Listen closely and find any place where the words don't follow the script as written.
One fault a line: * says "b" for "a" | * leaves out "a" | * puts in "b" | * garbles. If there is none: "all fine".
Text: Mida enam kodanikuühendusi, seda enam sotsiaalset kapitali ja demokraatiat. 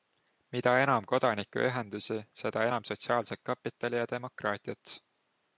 all fine